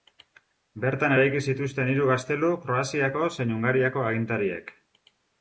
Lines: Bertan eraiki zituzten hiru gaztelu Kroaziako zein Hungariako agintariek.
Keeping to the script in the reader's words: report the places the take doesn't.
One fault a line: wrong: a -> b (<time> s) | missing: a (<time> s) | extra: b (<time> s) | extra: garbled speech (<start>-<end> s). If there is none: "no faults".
no faults